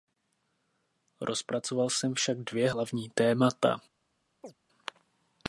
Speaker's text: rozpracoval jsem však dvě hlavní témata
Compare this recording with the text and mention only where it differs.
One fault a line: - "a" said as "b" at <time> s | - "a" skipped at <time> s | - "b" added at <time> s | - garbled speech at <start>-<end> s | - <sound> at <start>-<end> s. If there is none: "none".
- chirp at 4.4-4.6 s